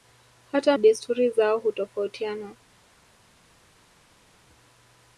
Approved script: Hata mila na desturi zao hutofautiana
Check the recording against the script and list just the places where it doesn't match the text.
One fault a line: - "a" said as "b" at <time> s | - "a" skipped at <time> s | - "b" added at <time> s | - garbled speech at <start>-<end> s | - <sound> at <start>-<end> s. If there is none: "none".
- "mila na" skipped at 0.8 s